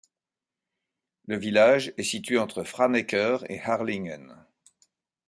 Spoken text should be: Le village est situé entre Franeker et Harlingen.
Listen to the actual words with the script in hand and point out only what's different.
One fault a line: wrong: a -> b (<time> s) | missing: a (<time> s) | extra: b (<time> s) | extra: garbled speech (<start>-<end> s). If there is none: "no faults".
no faults